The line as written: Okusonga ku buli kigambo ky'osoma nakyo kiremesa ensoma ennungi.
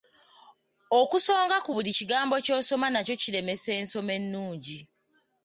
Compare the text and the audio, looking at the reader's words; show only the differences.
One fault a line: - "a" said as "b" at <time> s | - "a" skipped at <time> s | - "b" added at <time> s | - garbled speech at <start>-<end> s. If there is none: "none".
none